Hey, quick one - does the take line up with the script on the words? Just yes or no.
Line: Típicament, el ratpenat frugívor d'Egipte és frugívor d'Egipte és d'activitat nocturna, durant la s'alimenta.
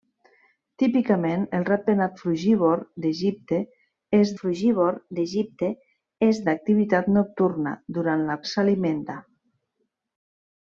yes